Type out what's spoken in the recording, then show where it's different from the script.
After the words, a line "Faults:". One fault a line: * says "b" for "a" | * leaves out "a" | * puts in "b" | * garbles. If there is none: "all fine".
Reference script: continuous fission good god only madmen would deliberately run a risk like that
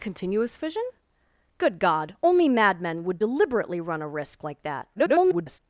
continuous fission good god only madmen would deliberately run a risk like that [garbled]
Faults:
* garbles